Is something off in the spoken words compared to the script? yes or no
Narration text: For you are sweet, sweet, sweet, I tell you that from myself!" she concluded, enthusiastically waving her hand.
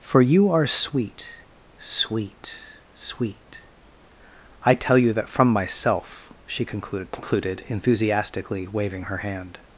yes